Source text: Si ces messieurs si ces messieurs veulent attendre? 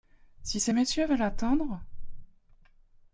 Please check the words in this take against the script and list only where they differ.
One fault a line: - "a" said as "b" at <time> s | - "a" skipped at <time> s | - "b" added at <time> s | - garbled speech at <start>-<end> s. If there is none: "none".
- "si ces messieurs" skipped at 1.1 s